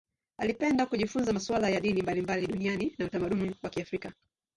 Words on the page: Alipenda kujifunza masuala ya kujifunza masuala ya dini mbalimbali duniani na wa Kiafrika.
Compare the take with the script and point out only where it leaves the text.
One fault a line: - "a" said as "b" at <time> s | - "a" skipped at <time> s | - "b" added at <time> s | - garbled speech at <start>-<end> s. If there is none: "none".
- "kujifunza masuala ya" skipped at 1.8 s
- "utamaduni" added at 3.0 s